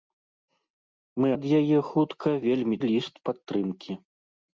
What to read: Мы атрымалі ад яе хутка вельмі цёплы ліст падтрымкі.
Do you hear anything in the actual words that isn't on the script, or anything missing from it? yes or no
yes